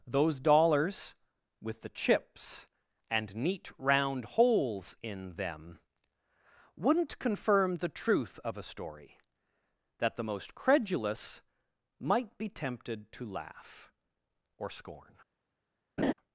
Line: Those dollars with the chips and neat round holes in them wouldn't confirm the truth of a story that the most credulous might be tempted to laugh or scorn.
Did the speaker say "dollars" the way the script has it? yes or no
yes